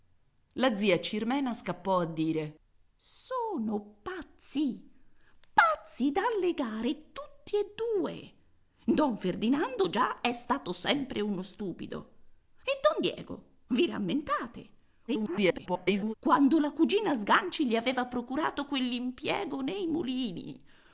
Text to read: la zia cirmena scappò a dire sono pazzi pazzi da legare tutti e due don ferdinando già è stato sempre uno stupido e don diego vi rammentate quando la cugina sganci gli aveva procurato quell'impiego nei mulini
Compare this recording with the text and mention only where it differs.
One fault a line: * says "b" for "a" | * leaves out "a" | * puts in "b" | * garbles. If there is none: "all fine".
* garbles